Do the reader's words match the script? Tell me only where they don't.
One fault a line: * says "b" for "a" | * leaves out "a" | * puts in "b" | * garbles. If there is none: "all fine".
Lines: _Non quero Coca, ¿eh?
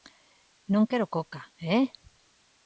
all fine